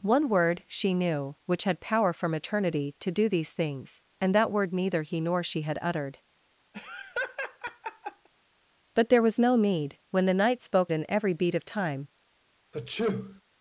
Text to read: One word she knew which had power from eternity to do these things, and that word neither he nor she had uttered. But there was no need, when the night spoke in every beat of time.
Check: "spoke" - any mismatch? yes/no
no